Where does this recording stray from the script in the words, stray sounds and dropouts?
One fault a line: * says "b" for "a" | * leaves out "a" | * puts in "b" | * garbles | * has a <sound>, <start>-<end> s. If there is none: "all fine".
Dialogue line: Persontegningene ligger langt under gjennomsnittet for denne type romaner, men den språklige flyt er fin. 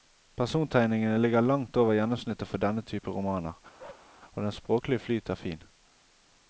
* says "over" for "under"
* has a bark, 3.8-4.1 s
* says "og" for "men"